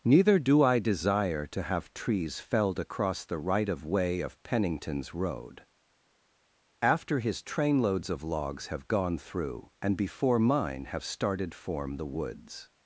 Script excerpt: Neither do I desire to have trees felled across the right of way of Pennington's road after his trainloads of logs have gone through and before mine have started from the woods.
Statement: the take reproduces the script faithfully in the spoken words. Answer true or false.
false